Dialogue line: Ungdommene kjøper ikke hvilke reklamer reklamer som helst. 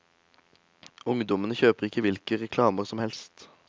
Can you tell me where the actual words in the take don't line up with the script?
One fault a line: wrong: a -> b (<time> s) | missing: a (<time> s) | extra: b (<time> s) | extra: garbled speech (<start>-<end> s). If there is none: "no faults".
missing: reklamer (2.9 s)